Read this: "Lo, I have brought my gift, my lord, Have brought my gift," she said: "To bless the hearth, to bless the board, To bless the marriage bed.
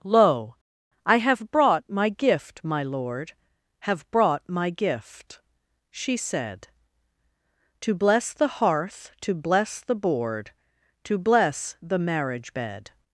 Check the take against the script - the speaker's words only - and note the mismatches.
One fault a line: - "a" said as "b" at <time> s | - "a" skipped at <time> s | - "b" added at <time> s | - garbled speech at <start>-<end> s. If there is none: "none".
none